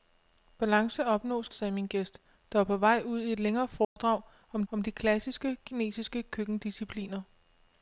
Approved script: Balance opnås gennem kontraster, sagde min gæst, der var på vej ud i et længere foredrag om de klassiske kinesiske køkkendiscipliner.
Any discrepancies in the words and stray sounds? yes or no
yes